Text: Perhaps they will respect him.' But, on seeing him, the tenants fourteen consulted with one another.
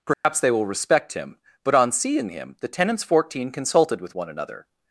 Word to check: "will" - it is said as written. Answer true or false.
true